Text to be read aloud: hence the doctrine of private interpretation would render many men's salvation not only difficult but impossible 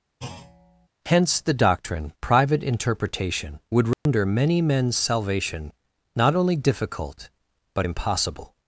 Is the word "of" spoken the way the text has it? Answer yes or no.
no